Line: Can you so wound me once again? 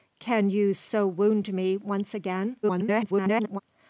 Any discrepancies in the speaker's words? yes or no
yes